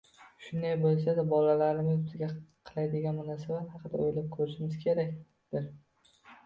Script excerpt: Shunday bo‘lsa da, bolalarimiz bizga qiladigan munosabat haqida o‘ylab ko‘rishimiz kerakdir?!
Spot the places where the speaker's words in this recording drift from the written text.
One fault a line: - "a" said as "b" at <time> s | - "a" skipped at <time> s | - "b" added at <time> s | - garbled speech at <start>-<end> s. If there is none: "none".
none